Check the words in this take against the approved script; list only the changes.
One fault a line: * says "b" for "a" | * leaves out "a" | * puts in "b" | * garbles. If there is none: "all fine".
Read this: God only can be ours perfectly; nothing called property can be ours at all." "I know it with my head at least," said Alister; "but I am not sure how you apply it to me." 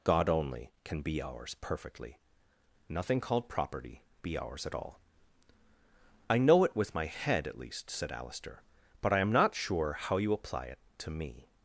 * leaves out "can"